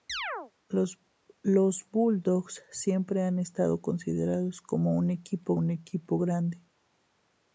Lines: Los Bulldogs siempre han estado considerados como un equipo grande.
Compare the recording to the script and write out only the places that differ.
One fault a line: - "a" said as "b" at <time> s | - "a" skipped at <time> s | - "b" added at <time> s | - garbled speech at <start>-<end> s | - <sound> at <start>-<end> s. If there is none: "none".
- chirp at 0.1-0.5 s
- "un equipo" added at 5.5 s